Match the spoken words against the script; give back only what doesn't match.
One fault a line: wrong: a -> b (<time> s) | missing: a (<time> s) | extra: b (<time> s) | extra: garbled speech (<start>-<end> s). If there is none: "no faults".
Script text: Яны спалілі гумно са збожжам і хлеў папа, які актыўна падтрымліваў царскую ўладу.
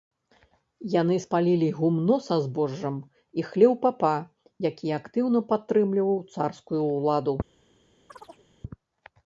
no faults